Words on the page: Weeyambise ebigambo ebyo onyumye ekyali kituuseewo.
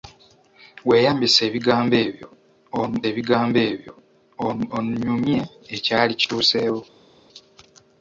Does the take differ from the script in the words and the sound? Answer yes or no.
yes